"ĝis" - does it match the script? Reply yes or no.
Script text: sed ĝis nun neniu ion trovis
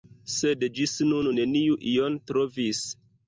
yes